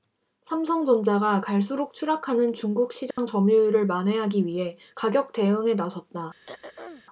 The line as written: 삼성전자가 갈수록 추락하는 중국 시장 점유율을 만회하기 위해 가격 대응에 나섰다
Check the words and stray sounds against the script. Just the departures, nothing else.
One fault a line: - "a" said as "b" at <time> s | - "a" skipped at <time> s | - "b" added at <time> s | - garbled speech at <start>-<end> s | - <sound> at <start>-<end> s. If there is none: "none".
- dropout at 3.1-3.2 s
- throat clearing at 6.5-7.0 s